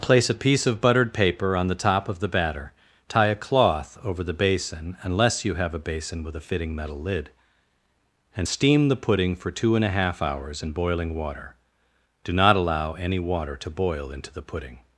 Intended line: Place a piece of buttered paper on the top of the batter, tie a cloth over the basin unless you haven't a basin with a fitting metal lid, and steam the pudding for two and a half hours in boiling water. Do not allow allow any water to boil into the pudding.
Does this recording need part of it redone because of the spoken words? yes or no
yes